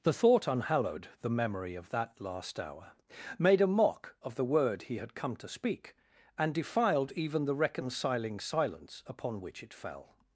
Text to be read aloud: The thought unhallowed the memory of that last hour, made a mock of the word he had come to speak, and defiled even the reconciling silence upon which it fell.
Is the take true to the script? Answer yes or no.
yes